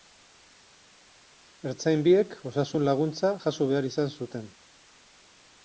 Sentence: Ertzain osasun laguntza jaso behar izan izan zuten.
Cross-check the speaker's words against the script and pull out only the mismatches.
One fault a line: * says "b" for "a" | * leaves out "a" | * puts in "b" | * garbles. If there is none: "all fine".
* puts in "biek"
* leaves out "izan"